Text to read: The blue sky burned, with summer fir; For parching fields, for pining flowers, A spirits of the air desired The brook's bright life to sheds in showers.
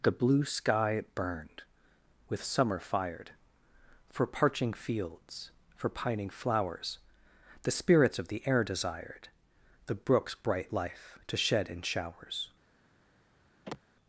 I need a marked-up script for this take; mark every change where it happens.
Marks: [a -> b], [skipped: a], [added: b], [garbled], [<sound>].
The blue sky burned, with summer [fir; -> fired] For parching fields, for pining flowers, [A -> The] spirits of the air desired The brook's bright life to [sheds -> shed] in showers. [sigh]